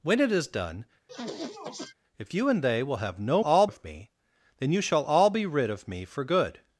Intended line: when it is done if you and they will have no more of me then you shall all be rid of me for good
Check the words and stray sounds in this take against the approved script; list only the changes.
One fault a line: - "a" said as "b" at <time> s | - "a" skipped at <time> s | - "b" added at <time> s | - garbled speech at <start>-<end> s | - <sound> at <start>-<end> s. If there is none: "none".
- sniff at 1.1-1.9 s
- "more" said as "all" at 3.4 s